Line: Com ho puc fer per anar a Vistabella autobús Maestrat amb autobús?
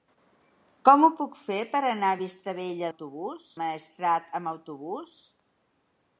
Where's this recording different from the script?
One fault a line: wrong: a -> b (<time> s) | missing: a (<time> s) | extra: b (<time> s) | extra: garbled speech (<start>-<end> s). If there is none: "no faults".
no faults